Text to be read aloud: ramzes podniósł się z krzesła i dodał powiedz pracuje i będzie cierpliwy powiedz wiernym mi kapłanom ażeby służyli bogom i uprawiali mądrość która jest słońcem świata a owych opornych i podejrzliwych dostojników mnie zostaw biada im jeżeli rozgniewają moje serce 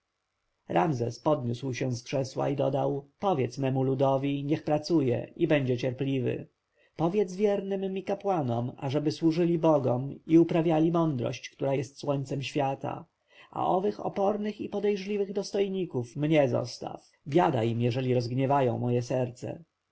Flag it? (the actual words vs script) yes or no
yes